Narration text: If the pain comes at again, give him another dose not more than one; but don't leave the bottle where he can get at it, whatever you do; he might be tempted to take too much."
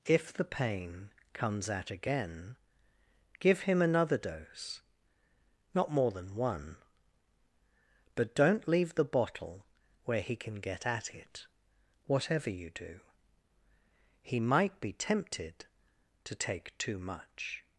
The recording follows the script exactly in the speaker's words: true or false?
true